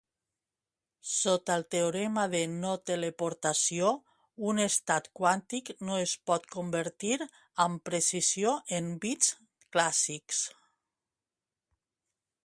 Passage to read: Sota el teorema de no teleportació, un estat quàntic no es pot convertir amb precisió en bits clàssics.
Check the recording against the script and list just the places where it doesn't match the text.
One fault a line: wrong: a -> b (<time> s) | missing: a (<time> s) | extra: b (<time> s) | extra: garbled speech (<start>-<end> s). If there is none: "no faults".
no faults